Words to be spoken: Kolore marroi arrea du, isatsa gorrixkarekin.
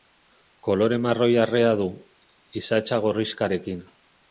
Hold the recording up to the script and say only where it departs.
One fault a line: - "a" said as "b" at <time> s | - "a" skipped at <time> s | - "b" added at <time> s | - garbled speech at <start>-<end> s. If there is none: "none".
none